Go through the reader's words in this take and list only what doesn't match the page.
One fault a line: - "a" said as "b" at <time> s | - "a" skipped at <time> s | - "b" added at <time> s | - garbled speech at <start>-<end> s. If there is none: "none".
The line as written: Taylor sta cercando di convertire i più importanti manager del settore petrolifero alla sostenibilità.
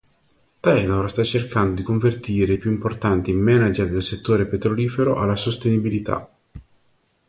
none